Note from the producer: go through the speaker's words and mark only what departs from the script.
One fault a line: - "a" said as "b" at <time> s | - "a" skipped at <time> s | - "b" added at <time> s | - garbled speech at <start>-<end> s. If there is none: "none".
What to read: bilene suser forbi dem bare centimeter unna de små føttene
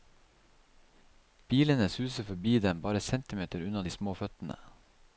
none